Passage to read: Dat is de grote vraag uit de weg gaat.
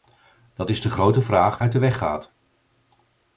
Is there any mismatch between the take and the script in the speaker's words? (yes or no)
no